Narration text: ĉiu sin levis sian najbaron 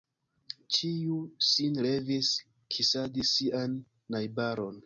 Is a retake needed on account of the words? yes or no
yes